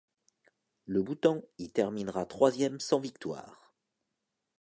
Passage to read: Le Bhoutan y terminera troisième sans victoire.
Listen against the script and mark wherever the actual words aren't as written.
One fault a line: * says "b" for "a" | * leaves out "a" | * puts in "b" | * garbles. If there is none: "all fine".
all fine